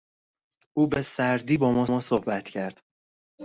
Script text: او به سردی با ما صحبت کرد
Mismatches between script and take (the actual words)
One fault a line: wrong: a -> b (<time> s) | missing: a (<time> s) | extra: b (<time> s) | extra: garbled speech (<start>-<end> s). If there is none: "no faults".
extra: ما (1.9 s)